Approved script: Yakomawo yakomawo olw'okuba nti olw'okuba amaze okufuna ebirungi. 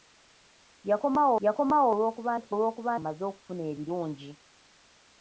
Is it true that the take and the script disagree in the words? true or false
false